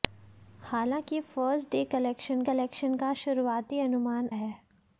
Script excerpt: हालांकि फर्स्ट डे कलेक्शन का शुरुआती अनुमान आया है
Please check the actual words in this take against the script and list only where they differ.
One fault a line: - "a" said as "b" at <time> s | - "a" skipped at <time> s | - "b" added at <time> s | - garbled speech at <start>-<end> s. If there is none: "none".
- "कलेक्शन" added at 2.5 s
- "आया" skipped at 4.3 s